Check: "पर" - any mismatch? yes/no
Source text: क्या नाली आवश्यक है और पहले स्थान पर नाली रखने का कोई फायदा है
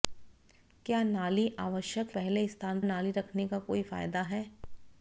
yes